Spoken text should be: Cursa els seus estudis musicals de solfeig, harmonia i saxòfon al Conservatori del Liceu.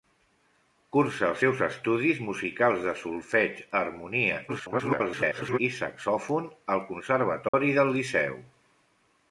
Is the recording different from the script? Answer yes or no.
yes